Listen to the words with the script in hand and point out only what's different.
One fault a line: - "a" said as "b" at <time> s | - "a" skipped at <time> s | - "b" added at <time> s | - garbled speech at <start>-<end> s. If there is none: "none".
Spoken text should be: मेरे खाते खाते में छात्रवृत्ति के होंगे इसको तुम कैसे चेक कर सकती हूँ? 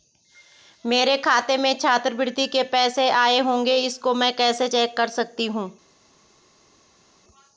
- "खाते" skipped at 1.6 s
- "पैसे आए" added at 2.6 s
- "तुम" said as "मैं" at 4.1 s